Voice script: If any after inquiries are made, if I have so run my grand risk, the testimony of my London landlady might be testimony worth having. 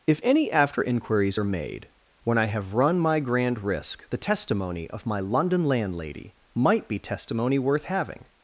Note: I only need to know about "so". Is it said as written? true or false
false